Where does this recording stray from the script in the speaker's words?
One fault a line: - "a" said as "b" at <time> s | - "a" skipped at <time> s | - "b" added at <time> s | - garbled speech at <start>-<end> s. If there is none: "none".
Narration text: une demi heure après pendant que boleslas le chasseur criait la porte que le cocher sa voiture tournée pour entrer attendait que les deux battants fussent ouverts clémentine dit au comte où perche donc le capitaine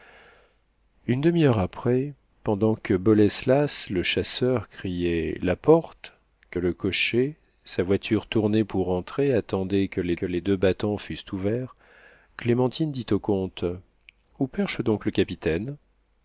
- "que les" added at 10.1 s